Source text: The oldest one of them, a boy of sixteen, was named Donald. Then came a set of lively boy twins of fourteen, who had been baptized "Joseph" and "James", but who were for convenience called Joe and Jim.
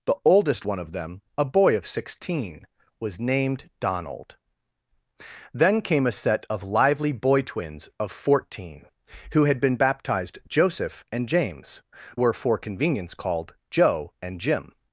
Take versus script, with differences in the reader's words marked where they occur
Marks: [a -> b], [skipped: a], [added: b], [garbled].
The oldest one of them, a boy of sixteen, was named Donald. Then came a set of lively boy twins of fourteen, who had been baptized "Joseph" and "James", [skipped: but who] were for convenience called Joe and Jim.